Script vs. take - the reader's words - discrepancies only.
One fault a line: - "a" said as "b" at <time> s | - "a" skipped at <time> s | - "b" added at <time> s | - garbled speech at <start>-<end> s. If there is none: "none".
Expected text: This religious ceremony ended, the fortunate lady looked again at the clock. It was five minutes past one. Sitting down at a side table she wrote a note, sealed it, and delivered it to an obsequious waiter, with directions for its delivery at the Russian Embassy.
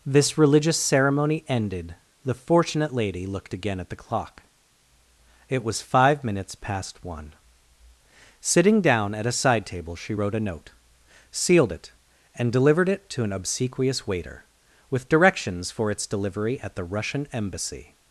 none